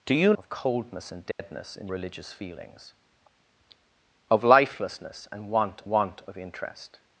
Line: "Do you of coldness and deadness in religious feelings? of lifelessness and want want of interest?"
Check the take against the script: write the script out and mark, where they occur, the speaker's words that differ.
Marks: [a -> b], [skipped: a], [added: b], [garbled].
"Do you of coldness and deadness in religious feelings? of lifelessness and want want of interest?"